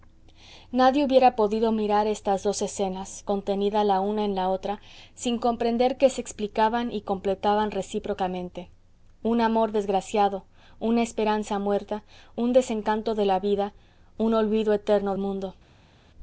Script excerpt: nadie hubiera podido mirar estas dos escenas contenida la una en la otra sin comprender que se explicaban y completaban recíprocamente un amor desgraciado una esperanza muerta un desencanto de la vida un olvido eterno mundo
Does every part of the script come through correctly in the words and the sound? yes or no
yes